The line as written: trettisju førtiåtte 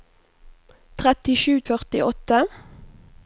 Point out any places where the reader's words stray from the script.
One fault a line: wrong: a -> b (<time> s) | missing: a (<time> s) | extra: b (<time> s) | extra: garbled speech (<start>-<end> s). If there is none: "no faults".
no faults